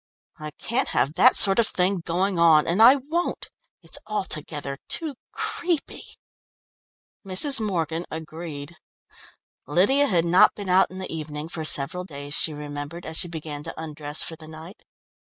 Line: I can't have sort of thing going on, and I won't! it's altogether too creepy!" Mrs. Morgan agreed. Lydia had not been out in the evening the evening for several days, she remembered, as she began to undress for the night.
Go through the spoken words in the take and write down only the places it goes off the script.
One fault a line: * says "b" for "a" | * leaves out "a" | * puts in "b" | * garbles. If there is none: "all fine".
* puts in "that"
* leaves out "the evening"